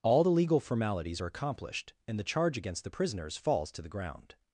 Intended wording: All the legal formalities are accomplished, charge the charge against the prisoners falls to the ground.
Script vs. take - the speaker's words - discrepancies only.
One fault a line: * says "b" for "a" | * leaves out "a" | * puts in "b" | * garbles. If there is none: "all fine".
* says "and" for "charge"